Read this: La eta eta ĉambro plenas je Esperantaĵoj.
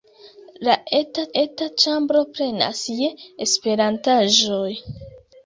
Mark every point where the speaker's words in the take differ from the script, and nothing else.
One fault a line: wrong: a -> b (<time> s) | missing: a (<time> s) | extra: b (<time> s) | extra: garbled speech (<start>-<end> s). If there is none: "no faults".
no faults